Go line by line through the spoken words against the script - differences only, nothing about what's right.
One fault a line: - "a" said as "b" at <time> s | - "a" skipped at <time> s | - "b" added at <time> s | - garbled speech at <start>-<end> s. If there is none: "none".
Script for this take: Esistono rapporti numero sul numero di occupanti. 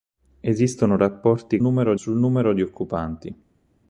none